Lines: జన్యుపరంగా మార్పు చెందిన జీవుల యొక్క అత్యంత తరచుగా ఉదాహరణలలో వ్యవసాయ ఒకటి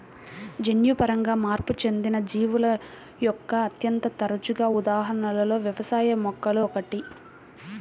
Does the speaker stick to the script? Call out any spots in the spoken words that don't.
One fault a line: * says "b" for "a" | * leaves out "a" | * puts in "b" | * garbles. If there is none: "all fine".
* puts in "మొక్కలు"